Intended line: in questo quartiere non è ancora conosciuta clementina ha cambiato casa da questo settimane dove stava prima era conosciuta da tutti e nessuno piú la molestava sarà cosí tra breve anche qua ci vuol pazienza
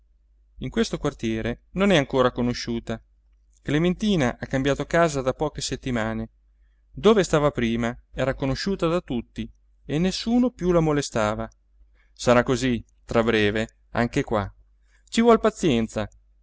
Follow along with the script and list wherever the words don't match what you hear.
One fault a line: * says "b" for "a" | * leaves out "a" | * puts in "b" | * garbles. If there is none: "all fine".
* says "poche" for "questo"